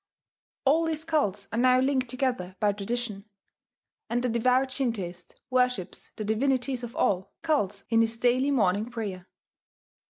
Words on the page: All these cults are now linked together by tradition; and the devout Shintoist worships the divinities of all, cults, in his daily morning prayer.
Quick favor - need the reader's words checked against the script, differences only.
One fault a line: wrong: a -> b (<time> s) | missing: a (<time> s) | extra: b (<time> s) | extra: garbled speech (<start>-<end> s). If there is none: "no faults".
no faults